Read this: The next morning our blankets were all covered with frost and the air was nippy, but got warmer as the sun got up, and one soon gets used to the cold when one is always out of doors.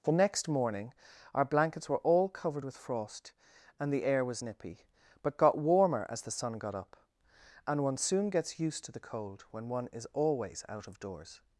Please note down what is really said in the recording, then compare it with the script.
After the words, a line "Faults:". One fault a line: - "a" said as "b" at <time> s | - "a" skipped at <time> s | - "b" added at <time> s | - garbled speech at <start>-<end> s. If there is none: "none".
The next morning our blankets were all covered with frost and the air was nippy, but got warmer as the sun got up, and one soon gets used to the cold when one is always out of doors.
Faults:
none